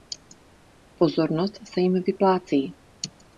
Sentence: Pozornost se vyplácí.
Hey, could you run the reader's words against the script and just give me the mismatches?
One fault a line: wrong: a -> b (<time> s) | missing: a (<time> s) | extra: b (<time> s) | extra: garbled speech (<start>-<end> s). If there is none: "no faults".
extra: jim (1.8 s)